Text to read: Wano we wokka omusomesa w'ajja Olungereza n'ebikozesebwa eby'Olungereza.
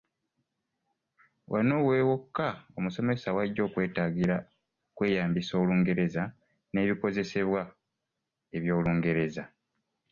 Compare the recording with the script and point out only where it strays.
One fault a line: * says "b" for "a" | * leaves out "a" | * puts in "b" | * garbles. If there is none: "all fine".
* puts in "okwetaagira okweyambisa"